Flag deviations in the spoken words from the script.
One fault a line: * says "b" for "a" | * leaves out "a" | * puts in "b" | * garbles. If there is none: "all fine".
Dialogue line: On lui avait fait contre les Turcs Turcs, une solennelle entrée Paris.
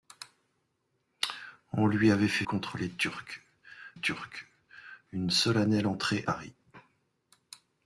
all fine